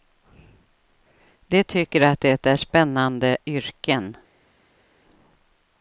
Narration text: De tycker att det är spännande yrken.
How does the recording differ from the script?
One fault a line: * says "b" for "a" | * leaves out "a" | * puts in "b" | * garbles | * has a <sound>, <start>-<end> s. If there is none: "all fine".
all fine